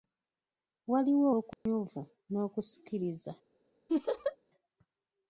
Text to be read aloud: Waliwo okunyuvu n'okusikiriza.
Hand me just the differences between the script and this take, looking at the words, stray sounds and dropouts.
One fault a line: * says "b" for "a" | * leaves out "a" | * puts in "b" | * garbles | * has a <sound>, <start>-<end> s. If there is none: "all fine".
* has a dropout, 1.5-1.7 s
* has a laugh, 3.9-4.4 s